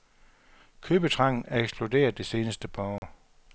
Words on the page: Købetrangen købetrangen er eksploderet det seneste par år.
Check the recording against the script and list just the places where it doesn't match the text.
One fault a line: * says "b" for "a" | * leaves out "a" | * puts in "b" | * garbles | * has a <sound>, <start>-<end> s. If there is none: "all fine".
* leaves out "købetrangen"
* has a dropout, 3.0-3.0 s